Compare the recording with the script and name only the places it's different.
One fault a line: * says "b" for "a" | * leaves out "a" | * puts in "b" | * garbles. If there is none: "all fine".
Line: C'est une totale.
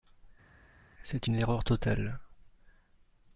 * puts in "erreur"